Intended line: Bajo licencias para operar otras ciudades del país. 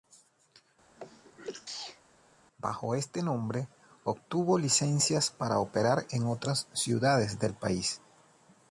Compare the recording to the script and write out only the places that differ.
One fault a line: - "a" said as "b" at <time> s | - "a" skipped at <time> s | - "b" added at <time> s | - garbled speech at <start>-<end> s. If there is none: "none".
- "este nombre obtuvo" added at 2.9 s
- "en" added at 6.1 s